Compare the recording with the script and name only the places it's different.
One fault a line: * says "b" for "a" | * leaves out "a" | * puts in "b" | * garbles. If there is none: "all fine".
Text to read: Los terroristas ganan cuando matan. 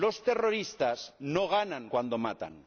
* puts in "no"